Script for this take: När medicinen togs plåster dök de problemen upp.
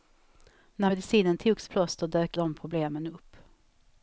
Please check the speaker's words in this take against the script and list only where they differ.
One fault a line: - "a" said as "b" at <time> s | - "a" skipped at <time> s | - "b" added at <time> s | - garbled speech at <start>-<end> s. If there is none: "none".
none